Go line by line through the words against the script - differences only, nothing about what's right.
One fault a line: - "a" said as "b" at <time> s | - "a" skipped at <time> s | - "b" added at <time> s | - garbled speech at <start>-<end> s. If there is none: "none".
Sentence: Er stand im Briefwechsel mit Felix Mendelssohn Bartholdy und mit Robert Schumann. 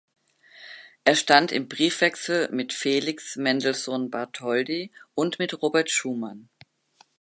none